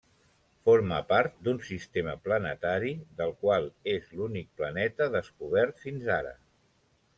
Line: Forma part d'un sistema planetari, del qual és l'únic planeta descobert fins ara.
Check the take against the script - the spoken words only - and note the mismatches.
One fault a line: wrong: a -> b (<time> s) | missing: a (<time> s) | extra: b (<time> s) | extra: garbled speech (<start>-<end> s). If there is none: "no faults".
no faults